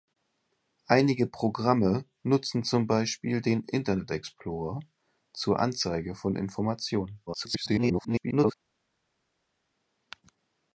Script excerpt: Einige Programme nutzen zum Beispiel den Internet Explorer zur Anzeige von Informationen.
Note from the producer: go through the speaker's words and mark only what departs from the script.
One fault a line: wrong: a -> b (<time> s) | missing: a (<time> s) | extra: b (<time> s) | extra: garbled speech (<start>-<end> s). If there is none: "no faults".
extra: garbled speech (7.3-8.5 s)